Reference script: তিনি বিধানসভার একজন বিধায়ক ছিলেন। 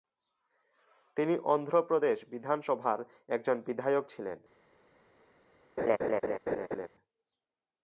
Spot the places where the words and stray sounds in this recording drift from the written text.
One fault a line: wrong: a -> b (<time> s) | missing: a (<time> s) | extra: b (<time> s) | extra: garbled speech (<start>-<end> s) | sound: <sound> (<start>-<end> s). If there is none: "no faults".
extra: অন্ধ্রপ্রদেশ (1.4 s)
sound: laugh (5.8-6.9 s)